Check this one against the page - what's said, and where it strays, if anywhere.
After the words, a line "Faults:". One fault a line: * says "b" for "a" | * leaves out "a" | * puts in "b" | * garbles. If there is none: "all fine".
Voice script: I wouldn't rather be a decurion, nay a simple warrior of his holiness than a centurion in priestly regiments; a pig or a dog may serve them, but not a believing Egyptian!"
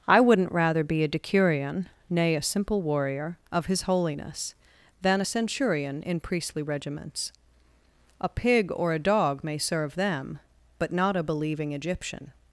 I wouldn't rather be a decurion, nay a simple warrior of his holiness than a centurion in priestly regiments; a pig or a dog may serve them, but not a believing Egyptian!"
Faults:
all fine